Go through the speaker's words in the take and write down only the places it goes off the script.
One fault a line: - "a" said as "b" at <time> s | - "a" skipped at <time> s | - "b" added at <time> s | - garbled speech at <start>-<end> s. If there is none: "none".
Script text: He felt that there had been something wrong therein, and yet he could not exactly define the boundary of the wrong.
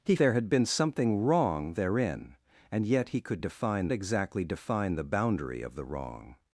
- "felt that" skipped at 0.1 s
- "not" said as "define" at 3.4 s